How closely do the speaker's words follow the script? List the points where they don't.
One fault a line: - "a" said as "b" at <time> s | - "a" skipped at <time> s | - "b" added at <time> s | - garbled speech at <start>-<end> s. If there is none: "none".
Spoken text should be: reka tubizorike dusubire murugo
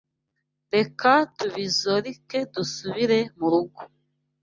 none